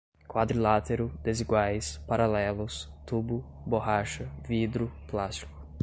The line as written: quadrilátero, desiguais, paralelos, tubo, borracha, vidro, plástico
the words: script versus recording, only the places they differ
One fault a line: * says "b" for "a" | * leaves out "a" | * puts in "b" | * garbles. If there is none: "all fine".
all fine